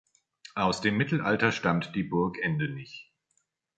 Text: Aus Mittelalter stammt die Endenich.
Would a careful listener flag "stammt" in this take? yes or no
no